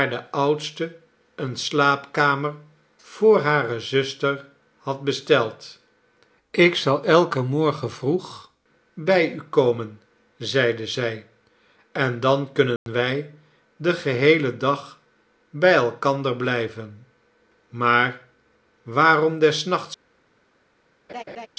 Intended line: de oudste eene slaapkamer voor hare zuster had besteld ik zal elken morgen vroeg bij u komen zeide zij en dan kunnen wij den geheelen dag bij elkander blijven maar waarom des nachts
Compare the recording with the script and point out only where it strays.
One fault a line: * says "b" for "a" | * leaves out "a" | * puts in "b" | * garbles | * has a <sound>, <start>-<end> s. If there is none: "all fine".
* has a dropout, 12.8-12.9 s
* has a laugh, 21.1-21.5 s